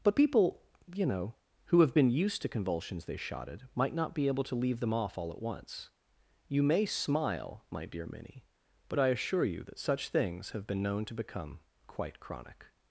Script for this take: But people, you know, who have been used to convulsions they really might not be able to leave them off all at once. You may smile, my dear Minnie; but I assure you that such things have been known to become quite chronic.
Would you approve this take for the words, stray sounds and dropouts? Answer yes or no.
no